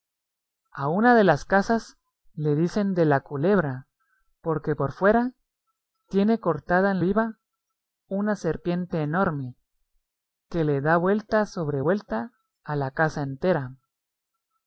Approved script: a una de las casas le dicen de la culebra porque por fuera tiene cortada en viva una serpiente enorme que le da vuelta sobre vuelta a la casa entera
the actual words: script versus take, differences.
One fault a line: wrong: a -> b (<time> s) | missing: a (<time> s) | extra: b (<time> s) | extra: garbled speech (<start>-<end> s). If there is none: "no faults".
no faults